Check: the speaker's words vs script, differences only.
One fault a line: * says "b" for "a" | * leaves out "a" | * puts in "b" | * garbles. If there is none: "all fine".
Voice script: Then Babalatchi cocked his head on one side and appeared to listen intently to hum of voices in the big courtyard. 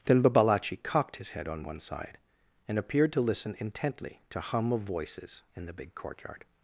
all fine